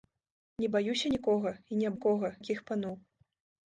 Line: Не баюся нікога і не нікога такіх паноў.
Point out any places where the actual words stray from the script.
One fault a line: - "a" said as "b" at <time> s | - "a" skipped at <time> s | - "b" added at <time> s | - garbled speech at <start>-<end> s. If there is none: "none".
none